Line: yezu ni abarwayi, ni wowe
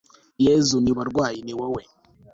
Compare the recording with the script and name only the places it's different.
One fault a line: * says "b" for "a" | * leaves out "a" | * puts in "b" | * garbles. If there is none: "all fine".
all fine